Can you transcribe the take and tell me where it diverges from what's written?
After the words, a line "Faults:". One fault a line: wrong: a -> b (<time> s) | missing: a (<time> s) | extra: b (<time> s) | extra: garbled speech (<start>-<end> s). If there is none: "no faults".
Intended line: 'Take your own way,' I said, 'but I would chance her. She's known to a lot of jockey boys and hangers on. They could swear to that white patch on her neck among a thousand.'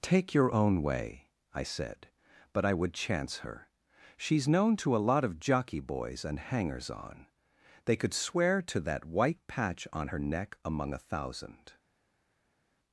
'Take your own way,' I said, 'but I would chance her. She's known to a lot of jockey boys and hangers on. They could swear to that white patch on her neck among a thousand.'
Faults:
no faults